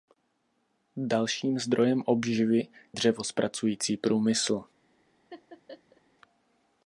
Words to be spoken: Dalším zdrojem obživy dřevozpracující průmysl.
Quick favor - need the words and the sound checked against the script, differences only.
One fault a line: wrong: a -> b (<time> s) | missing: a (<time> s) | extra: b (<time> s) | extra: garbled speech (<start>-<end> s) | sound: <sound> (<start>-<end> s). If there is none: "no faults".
sound: laugh (5.3-6.0 s)